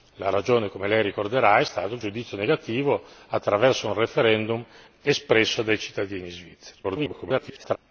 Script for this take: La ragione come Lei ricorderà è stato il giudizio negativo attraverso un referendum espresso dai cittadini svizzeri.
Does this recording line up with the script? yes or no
no